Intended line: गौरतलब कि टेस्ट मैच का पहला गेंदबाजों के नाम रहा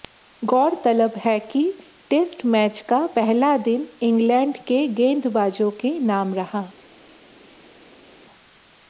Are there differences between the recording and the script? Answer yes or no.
yes